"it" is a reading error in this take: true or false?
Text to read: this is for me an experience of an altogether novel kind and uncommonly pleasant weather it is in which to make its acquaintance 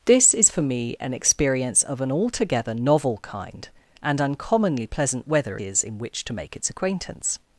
true